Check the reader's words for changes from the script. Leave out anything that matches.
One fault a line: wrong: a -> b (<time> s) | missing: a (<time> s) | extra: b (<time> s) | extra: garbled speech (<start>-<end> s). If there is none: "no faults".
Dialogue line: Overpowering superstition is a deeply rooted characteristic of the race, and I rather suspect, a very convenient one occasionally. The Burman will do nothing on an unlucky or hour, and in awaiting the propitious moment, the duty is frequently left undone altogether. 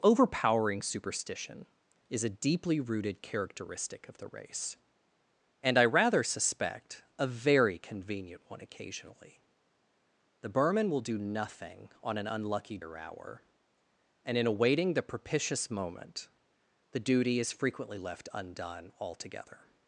no faults